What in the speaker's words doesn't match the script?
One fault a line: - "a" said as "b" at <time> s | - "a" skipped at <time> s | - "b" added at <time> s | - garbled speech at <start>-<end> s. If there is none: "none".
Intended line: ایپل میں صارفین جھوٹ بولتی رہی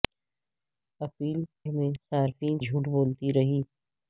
none